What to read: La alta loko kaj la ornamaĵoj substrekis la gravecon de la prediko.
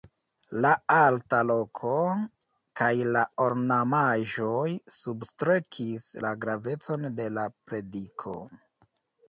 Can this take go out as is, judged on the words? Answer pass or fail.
pass